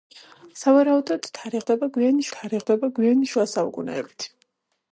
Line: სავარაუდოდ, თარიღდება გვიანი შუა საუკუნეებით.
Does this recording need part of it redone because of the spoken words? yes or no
yes